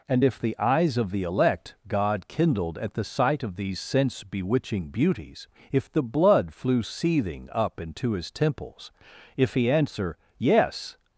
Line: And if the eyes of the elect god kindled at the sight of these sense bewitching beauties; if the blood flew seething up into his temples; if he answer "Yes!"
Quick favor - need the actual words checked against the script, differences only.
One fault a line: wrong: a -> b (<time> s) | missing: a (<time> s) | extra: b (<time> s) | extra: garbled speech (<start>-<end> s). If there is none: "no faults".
no faults